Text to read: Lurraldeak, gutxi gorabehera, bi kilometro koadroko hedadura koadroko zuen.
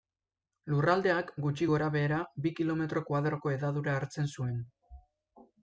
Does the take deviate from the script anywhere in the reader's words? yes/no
yes